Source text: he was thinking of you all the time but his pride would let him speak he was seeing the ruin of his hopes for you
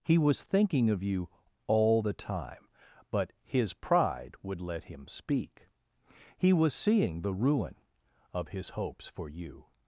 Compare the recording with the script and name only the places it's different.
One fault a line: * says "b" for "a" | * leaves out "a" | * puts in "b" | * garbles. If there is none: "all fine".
all fine